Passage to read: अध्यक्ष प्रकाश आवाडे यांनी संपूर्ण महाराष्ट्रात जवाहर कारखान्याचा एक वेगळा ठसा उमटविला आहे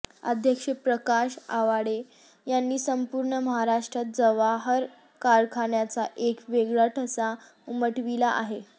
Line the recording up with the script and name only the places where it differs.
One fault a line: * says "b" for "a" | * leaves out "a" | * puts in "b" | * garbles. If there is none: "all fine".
all fine